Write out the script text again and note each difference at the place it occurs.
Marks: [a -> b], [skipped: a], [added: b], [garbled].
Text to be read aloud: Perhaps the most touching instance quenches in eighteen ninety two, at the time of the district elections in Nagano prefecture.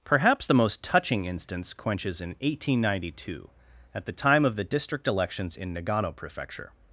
Perhaps the most touching instance quenches in eighteen ninety two, at the time of the district elections in Nagano prefecture.